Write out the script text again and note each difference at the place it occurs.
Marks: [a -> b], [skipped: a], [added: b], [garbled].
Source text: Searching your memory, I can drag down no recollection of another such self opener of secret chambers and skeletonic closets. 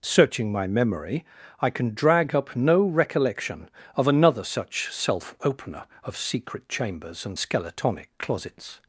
Searching [your -> my] memory, I can drag [down -> up] no recollection of another such self opener of secret chambers and skeletonic closets.